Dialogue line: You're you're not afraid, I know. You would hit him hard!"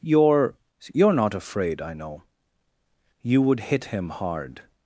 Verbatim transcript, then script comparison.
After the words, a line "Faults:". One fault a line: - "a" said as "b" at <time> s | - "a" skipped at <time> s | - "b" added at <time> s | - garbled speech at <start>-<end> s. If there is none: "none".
You're you're not afraid, I know. You would hit him hard!"
Faults:
none